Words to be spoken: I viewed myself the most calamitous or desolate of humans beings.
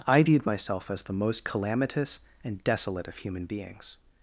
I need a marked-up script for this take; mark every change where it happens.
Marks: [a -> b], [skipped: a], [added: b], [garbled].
I viewed myself [added: as] the most calamitous [or -> and] desolate of [humans -> human] beings.